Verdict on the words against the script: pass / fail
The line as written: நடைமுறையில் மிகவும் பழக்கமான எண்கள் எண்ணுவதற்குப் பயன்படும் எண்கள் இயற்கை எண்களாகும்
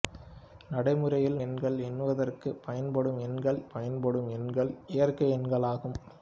fail